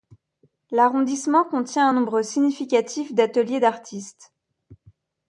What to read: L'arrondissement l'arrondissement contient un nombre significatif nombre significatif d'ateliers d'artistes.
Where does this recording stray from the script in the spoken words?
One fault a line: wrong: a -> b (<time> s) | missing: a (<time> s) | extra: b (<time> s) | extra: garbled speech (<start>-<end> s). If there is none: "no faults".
missing: l'arrondissement (1.4 s)
missing: nombre significatif (3.1 s)